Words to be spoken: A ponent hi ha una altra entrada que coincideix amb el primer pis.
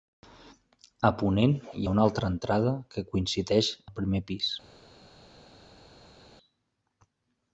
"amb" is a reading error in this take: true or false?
true